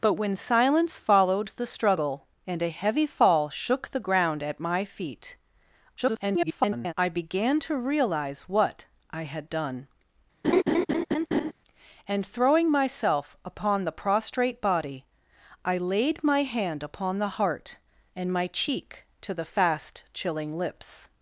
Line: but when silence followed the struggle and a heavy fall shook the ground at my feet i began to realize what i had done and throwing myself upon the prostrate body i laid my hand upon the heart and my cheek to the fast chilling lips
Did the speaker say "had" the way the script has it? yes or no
yes